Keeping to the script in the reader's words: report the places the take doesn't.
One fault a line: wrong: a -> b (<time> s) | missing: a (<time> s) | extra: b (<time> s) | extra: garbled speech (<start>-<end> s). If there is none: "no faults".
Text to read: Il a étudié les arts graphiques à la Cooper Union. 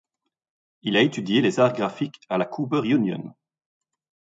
no faults